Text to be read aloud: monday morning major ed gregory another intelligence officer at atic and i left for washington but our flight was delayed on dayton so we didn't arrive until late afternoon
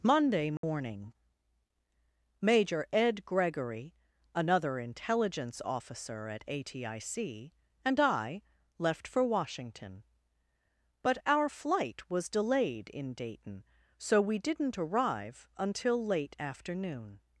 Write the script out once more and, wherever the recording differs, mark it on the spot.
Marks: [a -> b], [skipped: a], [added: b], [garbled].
monday morning major ed gregory another intelligence officer at atic and i left for washington but our flight was delayed [on -> in] dayton so we didn't arrive until late afternoon